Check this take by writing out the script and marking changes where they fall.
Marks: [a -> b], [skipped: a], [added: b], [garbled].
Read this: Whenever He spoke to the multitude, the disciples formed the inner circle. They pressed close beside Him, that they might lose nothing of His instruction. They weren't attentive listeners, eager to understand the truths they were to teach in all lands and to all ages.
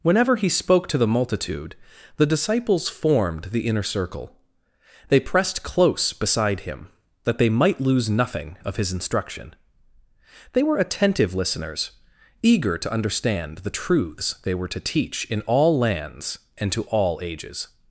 Whenever He spoke to the multitude, the disciples formed the inner circle. They pressed close beside Him, that they might lose nothing of His instruction. They [weren't -> were] attentive listeners, eager to understand the truths they were to teach in all lands and to all ages.